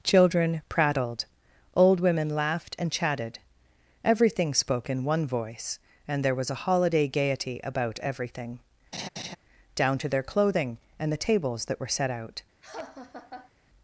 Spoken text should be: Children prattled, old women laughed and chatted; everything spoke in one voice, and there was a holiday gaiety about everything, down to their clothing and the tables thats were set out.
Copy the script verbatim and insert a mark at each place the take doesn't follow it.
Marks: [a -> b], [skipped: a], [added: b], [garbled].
Children prattled, old women laughed and chatted; everything spoke in one voice, and there was a holiday gaiety about everything, down to their clothing and the tables [thats -> that] were set out.